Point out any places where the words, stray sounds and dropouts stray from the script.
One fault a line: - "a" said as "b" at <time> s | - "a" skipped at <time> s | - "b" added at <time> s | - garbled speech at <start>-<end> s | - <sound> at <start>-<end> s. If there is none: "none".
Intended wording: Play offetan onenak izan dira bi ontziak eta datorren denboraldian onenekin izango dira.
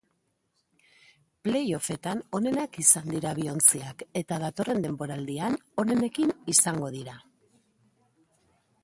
none